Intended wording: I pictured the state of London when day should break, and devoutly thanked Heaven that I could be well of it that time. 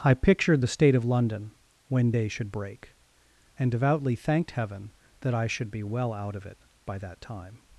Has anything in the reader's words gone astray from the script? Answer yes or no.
yes